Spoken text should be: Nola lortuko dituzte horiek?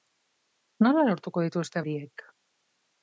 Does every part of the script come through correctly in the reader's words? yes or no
yes